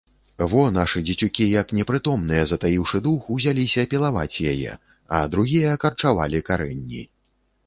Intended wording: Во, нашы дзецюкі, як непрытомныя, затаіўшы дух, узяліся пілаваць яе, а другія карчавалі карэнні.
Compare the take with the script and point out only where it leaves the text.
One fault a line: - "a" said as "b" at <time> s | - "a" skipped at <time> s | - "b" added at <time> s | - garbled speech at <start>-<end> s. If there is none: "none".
none